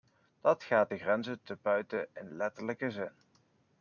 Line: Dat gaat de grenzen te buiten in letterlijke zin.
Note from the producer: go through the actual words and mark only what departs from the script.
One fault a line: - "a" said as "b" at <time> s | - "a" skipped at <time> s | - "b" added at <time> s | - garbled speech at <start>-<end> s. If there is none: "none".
none